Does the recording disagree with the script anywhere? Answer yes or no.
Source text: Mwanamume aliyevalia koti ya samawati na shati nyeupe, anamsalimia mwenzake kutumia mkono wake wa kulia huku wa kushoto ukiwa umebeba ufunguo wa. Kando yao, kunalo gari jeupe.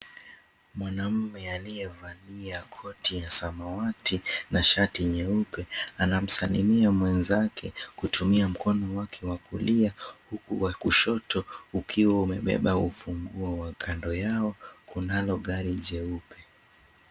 no